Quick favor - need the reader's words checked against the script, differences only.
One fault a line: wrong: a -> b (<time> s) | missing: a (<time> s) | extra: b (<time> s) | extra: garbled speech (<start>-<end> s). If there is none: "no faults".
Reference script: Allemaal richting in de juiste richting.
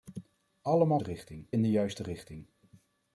no faults